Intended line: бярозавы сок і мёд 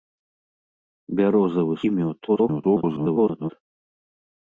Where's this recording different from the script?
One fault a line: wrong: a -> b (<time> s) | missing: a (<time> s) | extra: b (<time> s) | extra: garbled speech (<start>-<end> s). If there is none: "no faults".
missing: сок (1.8 s)
extra: garbled speech (2.3-3.5 s)